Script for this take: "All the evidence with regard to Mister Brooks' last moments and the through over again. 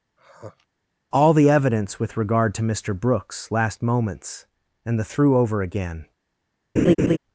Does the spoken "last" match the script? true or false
true